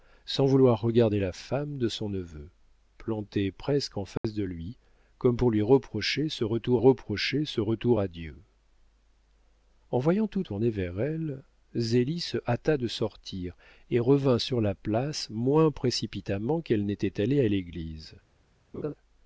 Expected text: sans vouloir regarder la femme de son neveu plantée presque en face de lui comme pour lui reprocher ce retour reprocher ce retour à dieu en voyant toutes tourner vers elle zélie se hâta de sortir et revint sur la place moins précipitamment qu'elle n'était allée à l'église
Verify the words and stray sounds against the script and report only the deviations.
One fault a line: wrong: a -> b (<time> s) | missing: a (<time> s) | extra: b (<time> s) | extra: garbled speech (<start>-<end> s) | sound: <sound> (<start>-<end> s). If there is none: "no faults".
sound: dropout (4.2-4.2 s)
sound: laugh (18.7-18.9 s)